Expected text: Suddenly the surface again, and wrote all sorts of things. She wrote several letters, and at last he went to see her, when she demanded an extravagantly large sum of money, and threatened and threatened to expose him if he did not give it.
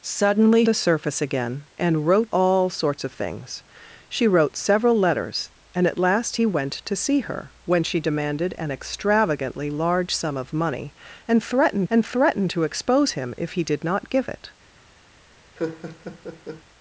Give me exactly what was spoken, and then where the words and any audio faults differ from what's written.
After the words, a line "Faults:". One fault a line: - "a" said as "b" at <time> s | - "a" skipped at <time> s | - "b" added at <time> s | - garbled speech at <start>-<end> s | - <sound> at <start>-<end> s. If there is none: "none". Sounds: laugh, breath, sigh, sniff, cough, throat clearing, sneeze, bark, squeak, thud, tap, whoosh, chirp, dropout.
Suddenly the surface again, and wrote all sorts of things. She wrote several letters, and at last he went to see her, when she demanded an extravagantly large sum of money, and threatened and threatened to expose him if he did not give it.
Faults:
- laugh at 15.6-16.6 s